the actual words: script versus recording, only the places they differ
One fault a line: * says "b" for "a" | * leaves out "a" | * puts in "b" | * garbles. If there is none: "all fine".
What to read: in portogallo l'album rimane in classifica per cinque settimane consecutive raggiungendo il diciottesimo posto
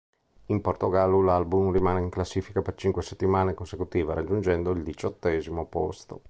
all fine